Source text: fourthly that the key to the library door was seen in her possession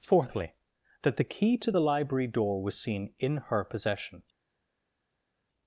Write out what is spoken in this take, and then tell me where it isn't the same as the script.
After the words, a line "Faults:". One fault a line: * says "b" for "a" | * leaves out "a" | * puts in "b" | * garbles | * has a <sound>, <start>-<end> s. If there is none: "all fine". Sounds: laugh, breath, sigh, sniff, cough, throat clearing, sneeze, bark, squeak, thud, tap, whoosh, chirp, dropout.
fourthly that the key to the library door was seen in her possession
Faults:
all fine